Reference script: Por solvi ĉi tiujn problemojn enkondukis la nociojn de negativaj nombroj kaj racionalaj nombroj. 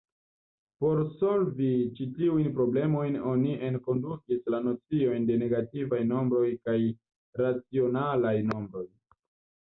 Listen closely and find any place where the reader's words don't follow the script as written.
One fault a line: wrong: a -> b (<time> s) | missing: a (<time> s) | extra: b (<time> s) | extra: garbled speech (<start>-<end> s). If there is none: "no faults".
extra: oni (3.3 s)